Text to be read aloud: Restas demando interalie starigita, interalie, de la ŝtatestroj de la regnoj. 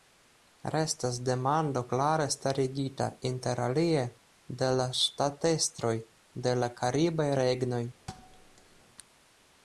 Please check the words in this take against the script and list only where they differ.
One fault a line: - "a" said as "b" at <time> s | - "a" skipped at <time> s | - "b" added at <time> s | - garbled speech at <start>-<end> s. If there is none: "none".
- "interalie" said as "klare" at 1.9 s
- "karibaj" added at 6.8 s